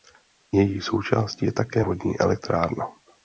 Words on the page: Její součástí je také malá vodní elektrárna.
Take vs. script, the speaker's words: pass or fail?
fail